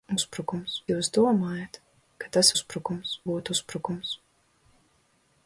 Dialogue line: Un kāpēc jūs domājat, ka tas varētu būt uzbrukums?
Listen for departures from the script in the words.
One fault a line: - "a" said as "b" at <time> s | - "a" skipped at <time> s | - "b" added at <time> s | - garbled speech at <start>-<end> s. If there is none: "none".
- "kāpēc" said as "uzbrukums" at 0.2 s
- "varētu" said as "uzbrukums" at 2.6 s